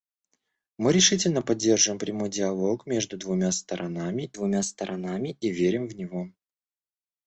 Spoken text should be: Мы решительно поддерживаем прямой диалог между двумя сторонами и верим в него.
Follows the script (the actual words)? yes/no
no